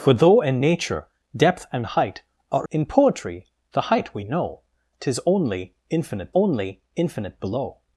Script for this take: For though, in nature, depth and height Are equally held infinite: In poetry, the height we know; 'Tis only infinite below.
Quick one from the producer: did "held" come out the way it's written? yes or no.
no